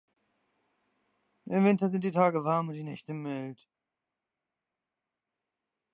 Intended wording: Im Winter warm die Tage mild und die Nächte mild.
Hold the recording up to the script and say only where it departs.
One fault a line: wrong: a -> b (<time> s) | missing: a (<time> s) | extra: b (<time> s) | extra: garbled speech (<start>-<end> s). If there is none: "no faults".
wrong: warm -> sind (1.9 s)
wrong: mild -> warm (2.4 s)